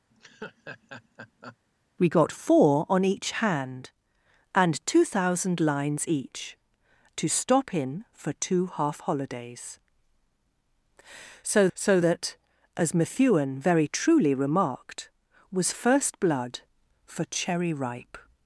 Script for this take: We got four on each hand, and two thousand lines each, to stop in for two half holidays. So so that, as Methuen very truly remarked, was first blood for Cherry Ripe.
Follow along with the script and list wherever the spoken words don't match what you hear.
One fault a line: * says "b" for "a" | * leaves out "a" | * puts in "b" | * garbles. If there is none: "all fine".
all fine